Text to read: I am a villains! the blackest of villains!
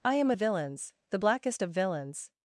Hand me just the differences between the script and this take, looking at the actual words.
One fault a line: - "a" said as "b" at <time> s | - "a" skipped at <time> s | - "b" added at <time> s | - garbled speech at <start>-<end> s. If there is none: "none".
none